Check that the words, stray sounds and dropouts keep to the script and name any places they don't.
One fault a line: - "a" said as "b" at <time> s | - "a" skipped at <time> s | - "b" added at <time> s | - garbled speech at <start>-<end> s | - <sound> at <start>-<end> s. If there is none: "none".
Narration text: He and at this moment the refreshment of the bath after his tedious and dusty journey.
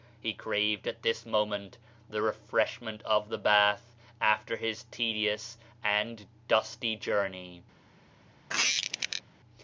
- "and" said as "craved" at 0.3 s
- squeak at 8.5-9.2 s